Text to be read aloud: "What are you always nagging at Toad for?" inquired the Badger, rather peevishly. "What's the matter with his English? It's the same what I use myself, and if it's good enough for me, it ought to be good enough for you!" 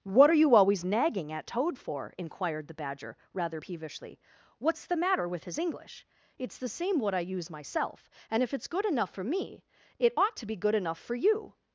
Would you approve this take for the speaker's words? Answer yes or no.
yes